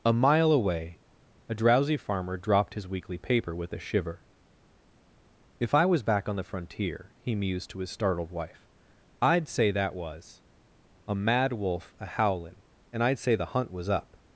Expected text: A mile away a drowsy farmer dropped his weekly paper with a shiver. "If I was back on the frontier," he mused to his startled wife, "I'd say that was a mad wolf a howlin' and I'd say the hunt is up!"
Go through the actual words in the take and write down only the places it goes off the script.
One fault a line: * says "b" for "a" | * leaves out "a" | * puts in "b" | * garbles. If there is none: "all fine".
* says "was" for "is"